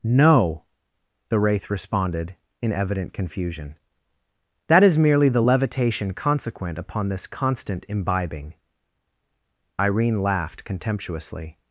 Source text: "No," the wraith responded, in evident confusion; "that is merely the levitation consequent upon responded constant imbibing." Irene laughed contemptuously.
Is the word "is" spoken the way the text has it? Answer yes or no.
yes